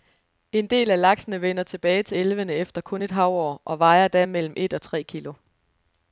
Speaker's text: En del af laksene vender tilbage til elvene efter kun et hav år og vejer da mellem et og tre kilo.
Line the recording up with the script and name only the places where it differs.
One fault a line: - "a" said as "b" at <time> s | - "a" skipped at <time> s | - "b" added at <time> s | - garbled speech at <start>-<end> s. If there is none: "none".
none